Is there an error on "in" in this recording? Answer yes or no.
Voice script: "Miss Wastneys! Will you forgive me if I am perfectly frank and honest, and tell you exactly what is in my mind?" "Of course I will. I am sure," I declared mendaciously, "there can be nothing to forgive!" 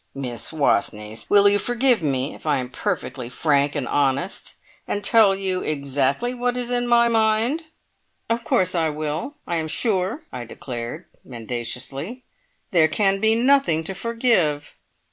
no